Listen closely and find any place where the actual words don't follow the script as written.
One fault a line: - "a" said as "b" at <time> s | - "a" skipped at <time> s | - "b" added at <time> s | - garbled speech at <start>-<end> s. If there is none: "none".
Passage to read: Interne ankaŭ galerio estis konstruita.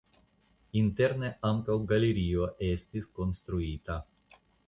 none